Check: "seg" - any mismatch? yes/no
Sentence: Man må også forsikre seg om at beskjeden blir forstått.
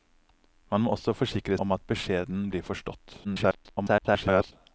yes